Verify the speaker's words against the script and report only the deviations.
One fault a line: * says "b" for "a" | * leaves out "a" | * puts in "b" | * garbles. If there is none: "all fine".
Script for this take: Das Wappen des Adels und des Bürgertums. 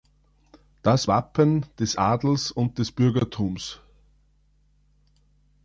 all fine